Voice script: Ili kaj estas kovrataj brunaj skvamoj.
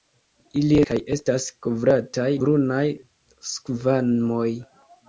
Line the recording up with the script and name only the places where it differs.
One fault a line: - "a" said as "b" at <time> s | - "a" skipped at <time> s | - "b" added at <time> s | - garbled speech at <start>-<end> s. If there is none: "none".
none